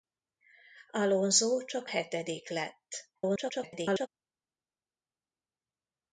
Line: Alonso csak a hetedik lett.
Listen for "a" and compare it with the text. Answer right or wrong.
wrong